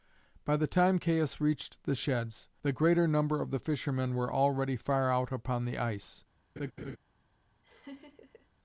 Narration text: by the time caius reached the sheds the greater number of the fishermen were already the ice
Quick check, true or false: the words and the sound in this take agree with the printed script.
false